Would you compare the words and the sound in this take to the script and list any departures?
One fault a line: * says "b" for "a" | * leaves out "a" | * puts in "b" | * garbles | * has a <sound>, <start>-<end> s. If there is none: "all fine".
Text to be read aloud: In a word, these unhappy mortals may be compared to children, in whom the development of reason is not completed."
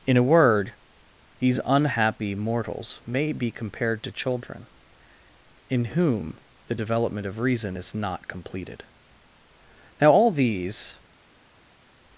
* puts in "Now all these"